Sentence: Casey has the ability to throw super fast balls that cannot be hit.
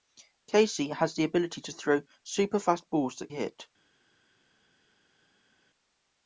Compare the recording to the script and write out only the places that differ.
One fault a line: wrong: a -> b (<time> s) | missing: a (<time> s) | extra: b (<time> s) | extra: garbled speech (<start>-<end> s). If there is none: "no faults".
missing: cannot be (3.3 s)